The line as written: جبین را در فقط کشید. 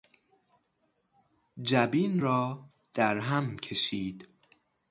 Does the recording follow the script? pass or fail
fail